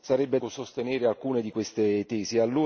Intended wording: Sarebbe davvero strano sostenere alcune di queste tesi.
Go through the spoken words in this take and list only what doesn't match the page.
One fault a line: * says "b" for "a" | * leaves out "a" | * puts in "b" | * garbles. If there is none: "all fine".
* leaves out "davvero strano"